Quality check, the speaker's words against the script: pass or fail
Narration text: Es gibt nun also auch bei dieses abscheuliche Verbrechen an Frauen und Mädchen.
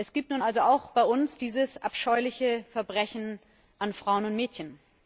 fail